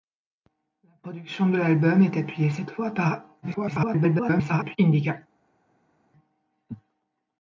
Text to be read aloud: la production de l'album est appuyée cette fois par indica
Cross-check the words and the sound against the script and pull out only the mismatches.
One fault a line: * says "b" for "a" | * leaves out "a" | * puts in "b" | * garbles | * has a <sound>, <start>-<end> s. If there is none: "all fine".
* garbles